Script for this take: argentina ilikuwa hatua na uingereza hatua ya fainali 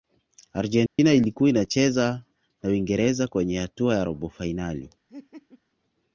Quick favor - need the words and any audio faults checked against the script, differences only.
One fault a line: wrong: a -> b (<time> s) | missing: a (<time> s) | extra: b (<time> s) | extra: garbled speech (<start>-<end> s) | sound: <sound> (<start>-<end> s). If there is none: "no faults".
sound: dropout (0.9-1.0 s)
wrong: hatua -> inacheza (1.5 s)
extra: kwenye (3.3 s)
extra: robo (4.0 s)
sound: laugh (5.1-5.6 s)